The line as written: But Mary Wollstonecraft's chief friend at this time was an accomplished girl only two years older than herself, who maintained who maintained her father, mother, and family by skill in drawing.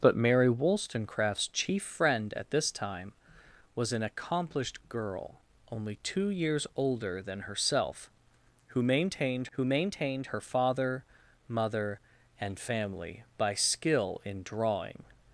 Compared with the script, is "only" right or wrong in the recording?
right